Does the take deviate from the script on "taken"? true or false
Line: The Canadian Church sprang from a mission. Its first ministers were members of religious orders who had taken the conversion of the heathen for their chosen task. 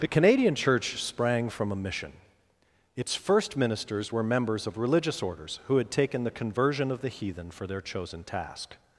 false